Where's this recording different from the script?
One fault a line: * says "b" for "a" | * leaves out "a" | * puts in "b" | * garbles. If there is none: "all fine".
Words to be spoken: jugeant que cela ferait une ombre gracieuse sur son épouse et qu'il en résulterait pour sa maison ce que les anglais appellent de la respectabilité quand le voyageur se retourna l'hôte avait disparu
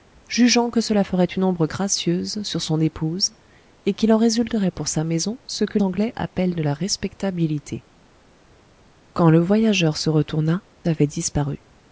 * leaves out "les"
* leaves out "l'hôte"